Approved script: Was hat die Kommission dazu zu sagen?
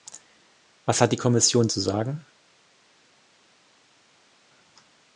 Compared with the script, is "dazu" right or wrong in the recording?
wrong